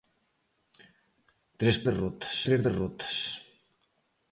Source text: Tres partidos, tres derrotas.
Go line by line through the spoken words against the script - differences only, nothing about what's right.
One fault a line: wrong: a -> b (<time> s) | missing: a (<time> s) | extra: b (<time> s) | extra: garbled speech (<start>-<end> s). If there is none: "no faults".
wrong: partidos -> derrotas (1.9 s)